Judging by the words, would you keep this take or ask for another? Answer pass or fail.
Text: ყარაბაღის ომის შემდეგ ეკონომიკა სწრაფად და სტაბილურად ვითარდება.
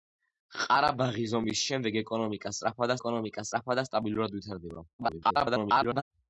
fail